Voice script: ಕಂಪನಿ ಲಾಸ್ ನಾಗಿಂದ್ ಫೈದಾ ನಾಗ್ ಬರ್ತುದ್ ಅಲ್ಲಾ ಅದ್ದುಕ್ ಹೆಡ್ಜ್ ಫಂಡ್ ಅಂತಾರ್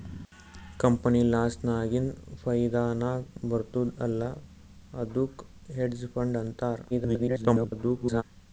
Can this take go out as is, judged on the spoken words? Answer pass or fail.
fail